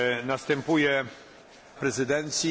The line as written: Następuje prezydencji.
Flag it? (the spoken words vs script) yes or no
no